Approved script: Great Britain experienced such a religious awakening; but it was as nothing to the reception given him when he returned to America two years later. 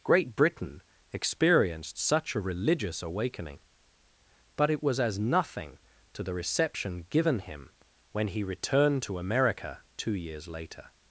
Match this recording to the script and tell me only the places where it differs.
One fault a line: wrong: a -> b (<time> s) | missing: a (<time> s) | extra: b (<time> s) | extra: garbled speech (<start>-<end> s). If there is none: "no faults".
no faults